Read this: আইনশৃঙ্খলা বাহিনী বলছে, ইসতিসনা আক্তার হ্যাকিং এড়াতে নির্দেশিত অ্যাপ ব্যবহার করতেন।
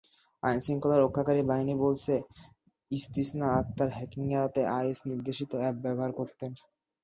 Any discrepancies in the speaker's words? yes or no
yes